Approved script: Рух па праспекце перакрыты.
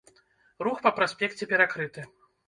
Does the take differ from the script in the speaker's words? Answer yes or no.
no